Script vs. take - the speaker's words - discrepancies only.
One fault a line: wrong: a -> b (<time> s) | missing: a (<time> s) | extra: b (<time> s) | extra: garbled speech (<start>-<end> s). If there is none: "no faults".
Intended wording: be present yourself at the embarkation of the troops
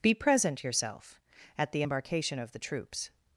no faults